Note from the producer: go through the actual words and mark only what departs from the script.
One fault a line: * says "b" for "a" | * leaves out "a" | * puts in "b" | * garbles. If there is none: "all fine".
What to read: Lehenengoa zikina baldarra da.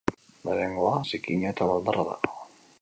* puts in "eta"